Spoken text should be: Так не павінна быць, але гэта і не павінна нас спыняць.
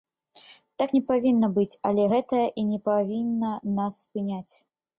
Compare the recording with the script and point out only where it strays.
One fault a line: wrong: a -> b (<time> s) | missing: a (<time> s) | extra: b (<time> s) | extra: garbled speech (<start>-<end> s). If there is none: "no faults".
no faults